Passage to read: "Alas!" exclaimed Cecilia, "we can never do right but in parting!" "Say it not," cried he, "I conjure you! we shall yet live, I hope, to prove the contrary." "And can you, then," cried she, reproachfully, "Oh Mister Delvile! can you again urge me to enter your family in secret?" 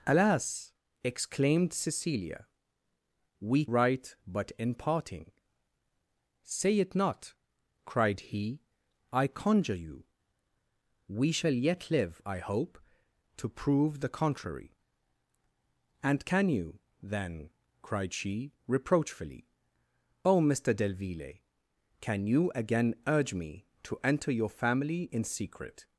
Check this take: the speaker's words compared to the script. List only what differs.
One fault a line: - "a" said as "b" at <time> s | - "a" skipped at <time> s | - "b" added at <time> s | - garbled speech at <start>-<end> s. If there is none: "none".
- "can never do" skipped at 3.6 s